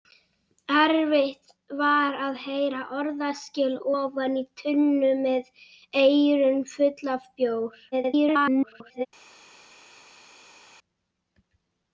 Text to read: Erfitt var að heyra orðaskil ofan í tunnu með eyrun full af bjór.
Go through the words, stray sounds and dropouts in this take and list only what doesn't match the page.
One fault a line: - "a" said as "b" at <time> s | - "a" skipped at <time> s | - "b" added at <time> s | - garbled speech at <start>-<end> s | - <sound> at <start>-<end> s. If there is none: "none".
- garbled speech at 7.9-9.1 s